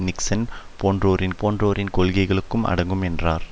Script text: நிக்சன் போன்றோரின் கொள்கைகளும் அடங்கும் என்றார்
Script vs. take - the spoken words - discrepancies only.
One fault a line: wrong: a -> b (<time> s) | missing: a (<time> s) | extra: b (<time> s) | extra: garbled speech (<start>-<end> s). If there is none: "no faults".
extra: போன்றோரின் (1.4 s)